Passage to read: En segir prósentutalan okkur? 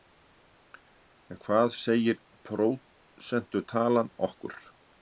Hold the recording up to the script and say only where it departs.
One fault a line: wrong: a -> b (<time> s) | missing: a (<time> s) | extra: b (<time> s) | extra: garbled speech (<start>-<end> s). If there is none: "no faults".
extra: hvað (1.5 s)